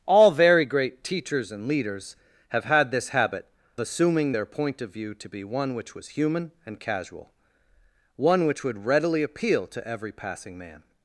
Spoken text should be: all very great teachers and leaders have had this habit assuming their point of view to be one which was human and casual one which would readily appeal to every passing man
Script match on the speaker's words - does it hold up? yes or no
yes